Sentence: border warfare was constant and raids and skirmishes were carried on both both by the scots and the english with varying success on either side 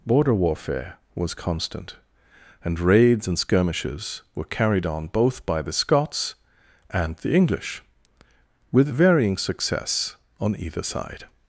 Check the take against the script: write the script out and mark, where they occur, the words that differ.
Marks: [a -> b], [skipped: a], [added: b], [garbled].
border warfare was constant and raids and skirmishes were carried on both [skipped: both] by the scots and the english with varying success on either side